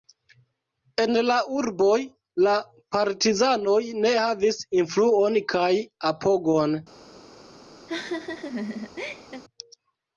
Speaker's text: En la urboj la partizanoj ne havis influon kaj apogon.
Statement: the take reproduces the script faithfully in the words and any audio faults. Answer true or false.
false